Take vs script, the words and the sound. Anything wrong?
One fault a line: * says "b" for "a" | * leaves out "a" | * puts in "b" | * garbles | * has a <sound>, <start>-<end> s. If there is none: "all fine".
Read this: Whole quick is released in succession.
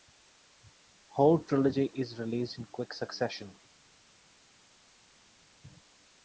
* says "trilogy" for "quick"
* puts in "quick"